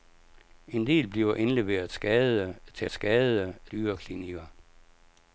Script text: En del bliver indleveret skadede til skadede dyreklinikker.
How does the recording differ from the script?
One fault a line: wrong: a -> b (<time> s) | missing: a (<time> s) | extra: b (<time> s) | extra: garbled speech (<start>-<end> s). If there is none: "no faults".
no faults